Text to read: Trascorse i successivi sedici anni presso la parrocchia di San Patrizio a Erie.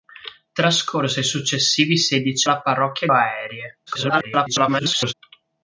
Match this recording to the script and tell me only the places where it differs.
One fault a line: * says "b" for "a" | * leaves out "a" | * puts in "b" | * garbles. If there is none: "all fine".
* leaves out "anni presso"
* leaves out "di San Patrizio"
* garbles